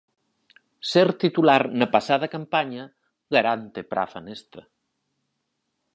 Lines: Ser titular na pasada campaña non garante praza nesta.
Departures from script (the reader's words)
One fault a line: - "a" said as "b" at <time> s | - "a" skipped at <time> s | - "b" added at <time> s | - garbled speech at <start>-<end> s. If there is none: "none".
- "non" skipped at 2.8 s